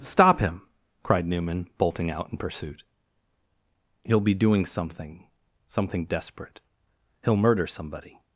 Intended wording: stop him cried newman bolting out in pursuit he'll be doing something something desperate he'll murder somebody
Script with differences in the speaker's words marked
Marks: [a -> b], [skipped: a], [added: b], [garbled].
stop him cried newman bolting out in pursuit he'll be doing something something desperate he'll murder somebody